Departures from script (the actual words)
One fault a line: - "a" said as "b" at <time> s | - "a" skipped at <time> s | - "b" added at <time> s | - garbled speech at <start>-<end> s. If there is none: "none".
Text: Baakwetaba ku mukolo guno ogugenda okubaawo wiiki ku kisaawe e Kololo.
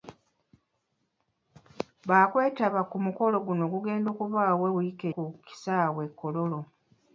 none